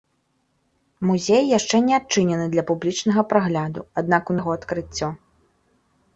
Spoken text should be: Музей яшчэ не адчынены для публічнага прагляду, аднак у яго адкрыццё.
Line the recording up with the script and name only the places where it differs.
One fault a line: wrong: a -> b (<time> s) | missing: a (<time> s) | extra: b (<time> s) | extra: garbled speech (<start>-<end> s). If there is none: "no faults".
no faults